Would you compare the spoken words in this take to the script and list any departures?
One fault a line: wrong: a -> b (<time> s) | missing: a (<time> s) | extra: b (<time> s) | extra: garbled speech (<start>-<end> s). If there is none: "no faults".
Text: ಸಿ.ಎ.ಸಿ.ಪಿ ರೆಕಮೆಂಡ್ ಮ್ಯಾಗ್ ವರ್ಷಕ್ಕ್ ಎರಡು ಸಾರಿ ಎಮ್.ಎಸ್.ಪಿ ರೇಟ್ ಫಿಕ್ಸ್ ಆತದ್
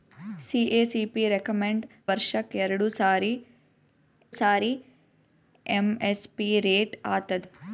missing: ಮ್ಯಾಗ್ (1.8 s)
extra: ಸಾರಿ (4.4 s)
missing: ಫಿಕ್ಸ್ (6.9 s)